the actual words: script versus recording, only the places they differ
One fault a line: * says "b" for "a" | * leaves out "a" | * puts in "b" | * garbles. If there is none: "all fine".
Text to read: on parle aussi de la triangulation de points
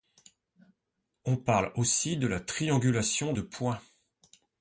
all fine